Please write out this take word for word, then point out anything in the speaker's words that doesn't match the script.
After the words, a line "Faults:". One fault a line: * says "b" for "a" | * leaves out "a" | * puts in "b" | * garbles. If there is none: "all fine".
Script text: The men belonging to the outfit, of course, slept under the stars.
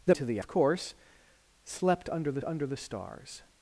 The to the of course, slept under the under the stars.
Faults:
* leaves out "men belonging"
* leaves out "outfit"
* puts in "under the"